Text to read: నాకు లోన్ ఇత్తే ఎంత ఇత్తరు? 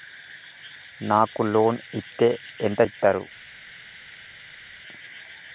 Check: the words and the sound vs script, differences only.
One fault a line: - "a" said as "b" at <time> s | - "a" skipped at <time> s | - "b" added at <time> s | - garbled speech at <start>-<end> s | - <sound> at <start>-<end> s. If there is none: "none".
none